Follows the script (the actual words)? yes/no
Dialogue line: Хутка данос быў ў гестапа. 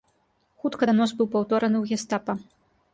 no